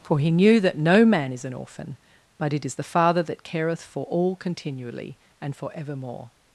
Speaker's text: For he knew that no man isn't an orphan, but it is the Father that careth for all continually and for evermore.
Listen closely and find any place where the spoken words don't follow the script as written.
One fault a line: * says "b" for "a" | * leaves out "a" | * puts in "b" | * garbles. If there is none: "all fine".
* says "is" for "isn't"